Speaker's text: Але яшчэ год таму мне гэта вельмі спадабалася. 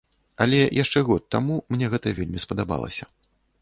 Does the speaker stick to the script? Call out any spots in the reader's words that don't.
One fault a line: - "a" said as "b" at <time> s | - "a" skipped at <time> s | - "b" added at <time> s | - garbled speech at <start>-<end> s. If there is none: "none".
none